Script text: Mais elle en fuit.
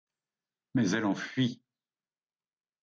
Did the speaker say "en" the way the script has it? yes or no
yes